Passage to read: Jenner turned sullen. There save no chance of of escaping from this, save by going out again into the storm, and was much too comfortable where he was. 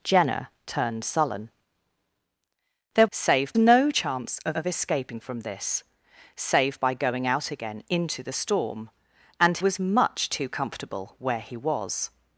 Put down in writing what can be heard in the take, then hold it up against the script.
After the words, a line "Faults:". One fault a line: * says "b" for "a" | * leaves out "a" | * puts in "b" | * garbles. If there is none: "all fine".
Jenner turned sullen. There save no chance of of escaping from this, save by going out again into the storm, and was much too comfortable where he was.
Faults:
all fine